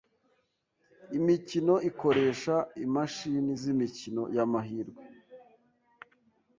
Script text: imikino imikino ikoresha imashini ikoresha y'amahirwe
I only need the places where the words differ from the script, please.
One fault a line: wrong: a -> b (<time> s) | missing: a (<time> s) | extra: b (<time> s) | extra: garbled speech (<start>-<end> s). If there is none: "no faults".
missing: imikino (1.8 s)
wrong: ikoresha -> z'imikino (3.6 s)